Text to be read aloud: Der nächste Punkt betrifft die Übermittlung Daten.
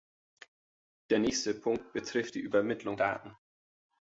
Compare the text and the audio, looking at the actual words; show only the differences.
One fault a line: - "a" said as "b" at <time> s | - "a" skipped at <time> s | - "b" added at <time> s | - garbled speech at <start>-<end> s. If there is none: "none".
none